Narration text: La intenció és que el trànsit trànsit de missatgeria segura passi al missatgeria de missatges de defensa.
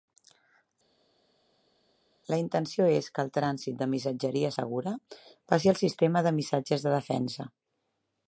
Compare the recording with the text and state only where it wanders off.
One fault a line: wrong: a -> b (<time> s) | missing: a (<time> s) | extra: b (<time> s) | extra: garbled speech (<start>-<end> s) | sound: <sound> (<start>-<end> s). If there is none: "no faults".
missing: trànsit (3.8 s)
wrong: missatgeria -> sistema (5.8 s)